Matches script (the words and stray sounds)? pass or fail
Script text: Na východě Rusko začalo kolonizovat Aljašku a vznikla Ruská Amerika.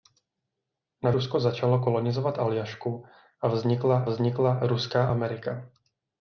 fail